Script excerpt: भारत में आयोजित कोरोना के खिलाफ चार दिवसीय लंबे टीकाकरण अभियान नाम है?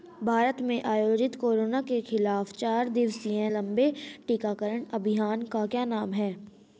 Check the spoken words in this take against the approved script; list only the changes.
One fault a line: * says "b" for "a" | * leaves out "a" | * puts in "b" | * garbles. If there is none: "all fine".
* puts in "का क्या"